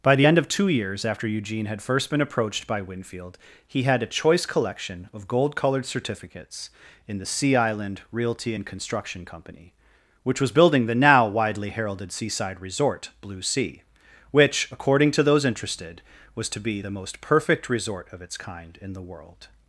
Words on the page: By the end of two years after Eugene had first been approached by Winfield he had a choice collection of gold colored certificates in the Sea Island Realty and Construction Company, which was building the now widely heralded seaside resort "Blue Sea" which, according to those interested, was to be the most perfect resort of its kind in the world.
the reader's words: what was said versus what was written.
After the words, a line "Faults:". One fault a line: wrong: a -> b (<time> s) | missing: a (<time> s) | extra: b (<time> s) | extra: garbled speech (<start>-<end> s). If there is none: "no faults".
By the end of two years after Eugene had first been approached by Winfield he had a choice collection of gold colored certificates in the Sea Island Realty and Construction Company, which was building the now widely heralded seaside resort "Blue Sea" which, according to those interested, was to be the most perfect resort of its kind in the world.
Faults:
no faults